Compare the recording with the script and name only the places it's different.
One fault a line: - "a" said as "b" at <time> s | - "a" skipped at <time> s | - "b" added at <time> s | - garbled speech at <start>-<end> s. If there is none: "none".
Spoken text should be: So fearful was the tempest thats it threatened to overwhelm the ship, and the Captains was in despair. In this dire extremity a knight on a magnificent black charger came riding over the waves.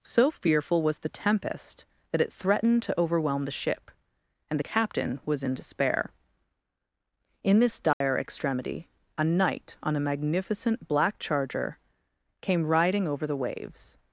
- "thats" said as "that" at 2.1 s
- "Captains" said as "Captain" at 4.6 s